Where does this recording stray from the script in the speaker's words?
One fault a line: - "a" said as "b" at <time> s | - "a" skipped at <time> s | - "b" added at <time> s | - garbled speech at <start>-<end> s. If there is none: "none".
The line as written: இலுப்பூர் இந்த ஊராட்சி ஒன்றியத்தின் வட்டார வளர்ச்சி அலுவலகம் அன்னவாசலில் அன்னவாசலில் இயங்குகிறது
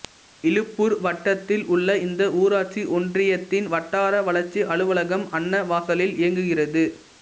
- "வட்டத்தில் உள்ள" added at 1.0 s
- "அன்னவாசலில்" skipped at 6.2 s